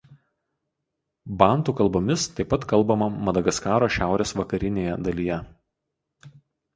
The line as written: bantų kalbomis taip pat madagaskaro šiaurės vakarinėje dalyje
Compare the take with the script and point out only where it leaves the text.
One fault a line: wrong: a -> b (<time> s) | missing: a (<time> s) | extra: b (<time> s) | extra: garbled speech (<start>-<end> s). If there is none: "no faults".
extra: kalbama (2.7 s)